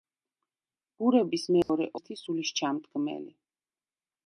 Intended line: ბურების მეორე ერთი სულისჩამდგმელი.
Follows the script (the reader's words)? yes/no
yes